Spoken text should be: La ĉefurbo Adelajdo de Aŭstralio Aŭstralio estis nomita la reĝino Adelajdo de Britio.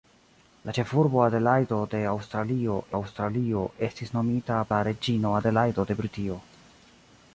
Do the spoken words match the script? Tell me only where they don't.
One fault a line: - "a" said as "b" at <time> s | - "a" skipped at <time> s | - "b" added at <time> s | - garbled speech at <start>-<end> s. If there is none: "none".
none